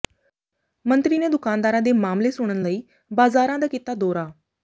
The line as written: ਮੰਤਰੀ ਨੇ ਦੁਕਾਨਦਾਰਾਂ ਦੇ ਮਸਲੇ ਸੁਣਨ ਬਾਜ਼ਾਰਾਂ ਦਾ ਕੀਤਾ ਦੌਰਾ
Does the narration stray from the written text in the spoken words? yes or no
yes